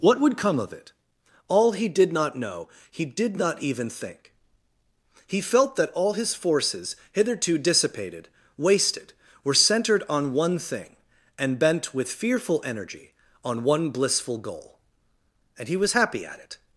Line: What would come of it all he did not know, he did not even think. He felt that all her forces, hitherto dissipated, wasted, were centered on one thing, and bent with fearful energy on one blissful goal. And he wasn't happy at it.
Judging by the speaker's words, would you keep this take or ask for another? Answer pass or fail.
fail